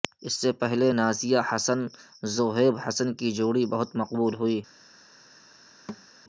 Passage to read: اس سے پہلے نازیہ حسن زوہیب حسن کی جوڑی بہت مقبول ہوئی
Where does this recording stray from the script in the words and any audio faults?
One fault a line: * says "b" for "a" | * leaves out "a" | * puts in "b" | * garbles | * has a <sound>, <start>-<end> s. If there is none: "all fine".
* has a thud, 5.9-6.1 s